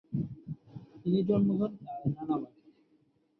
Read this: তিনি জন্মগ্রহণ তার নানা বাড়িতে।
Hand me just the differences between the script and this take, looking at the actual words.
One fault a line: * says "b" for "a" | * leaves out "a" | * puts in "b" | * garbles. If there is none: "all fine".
all fine